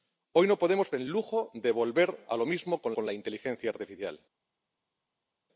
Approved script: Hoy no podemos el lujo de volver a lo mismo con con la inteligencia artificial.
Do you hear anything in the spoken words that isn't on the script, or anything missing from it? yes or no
no